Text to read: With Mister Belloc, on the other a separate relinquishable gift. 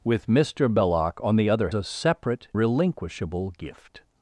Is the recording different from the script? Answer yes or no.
no